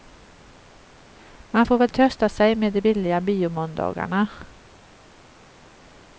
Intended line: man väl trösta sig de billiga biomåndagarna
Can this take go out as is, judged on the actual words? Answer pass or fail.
fail